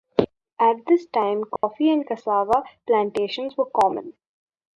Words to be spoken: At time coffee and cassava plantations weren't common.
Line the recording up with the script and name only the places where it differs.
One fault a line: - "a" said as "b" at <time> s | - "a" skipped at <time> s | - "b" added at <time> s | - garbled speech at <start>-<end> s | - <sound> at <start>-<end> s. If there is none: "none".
- "this" added at 0.9 s
- dropout at 1.6-1.6 s
- "weren't" said as "were" at 3.6 s